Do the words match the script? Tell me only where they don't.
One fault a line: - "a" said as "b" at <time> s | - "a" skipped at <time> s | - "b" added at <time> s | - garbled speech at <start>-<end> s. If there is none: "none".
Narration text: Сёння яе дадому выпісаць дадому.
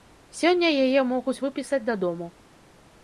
- "дадому" said as "могуць" at 1.1 s